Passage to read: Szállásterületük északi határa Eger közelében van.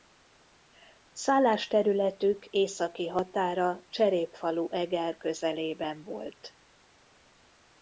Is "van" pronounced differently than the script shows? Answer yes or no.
yes